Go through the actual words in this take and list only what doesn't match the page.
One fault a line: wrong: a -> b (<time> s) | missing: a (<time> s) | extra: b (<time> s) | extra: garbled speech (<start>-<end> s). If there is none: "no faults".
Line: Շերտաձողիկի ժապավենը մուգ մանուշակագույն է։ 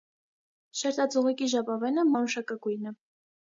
missing: մուգ (2.1 s)